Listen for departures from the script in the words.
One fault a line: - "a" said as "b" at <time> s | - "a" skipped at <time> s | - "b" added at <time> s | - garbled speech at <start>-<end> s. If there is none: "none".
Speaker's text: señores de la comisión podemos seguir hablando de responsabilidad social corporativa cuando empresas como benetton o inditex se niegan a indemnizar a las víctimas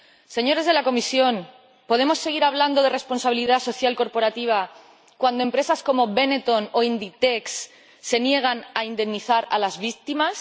none